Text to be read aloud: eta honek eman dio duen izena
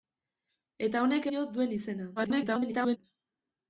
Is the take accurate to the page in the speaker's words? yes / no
no